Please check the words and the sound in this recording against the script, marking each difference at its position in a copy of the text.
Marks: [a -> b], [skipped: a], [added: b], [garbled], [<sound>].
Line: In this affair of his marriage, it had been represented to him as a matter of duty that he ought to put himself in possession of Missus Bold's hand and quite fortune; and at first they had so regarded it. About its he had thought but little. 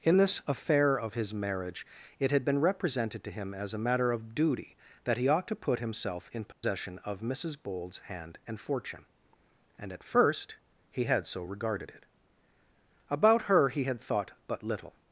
In this affair of his marriage, it had been represented to him as a matter of duty that he ought to put himself in possession [dropout] of Missus Bold's hand and [skipped: quite] fortune; and at first [they -> he] had so regarded it. About [its -> her] he had thought but little.